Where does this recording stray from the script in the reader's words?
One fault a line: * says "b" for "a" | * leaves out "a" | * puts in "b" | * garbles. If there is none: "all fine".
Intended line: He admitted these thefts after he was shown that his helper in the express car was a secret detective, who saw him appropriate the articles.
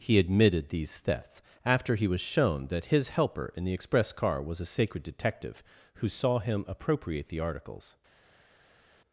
* says "sacred" for "secret"